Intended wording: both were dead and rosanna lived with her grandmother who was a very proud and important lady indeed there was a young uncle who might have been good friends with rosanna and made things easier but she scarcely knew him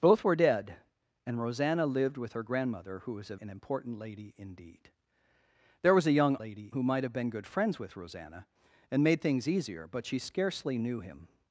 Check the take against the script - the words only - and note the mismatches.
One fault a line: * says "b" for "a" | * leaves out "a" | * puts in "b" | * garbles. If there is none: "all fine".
* leaves out "very proud"
* says "lady" for "uncle"